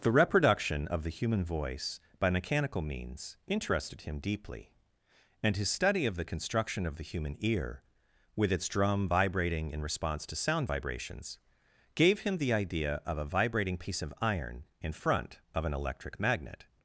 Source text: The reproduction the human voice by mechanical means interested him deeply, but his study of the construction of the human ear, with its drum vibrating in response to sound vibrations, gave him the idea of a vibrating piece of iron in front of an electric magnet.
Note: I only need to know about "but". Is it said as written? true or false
false